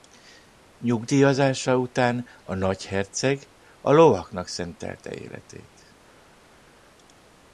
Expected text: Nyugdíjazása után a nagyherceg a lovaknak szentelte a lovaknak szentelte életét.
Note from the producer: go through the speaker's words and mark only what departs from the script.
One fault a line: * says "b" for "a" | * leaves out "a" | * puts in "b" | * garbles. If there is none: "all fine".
* leaves out "a lovaknak szentelte"